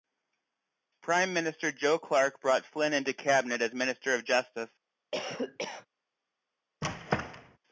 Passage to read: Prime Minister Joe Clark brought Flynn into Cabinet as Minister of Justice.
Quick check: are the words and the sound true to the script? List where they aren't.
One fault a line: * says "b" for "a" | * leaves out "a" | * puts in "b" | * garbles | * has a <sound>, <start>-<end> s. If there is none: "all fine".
* has a cough, 5.1-5.9 s
* has a squeak, 6.8-7.6 s